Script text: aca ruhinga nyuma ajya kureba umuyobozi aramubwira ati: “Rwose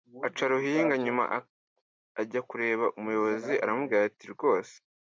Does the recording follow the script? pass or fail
pass